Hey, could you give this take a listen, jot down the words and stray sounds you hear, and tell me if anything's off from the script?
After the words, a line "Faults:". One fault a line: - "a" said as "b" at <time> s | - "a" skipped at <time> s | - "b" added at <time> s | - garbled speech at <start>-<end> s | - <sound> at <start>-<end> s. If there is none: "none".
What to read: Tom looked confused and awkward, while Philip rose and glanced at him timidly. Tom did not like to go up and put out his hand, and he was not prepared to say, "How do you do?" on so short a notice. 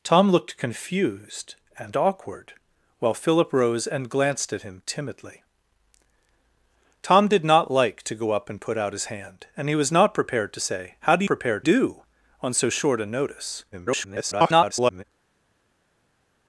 Tom looked confused and awkward, while Philip rose and glanced at him timidly. Tom did not like to go up and put out his hand, and he was not prepared to say, "How do prepared do?" on so short a notice. [garbled]
Faults:
- "you" said as "prepared" at 11.3 s
- garbled speech at 13.7-15.0 s